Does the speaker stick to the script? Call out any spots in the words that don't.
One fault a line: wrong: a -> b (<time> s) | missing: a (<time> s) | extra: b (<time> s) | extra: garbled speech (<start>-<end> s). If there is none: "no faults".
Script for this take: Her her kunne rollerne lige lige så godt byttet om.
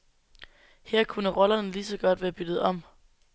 missing: her (1.0 s)
missing: lige (1.9 s)
extra: være (2.2 s)